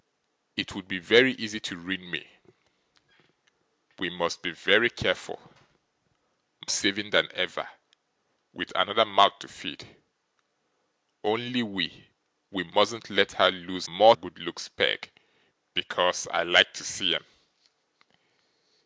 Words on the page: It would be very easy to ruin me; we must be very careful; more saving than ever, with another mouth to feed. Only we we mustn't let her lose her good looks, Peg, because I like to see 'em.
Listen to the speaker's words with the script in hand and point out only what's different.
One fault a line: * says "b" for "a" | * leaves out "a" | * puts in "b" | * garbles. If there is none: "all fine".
* leaves out "more"
* says "more" for "her"